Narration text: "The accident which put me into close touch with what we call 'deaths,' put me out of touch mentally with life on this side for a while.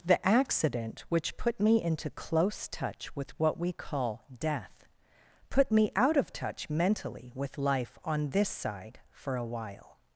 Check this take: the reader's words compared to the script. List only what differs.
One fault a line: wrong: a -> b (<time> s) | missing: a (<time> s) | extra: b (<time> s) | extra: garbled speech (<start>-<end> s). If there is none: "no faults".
wrong: deaths -> death (4.3 s)